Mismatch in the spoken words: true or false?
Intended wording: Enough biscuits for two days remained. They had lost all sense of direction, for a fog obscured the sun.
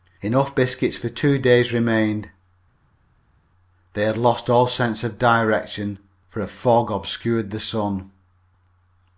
false